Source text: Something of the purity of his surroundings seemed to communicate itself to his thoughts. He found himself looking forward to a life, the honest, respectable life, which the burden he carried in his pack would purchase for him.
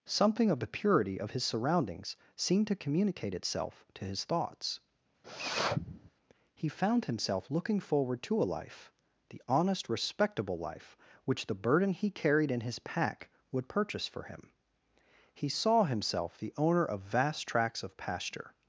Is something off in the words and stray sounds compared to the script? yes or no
yes